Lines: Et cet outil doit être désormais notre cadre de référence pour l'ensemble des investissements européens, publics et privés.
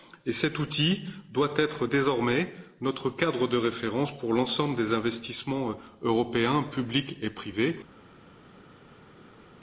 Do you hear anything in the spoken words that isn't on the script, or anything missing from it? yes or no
no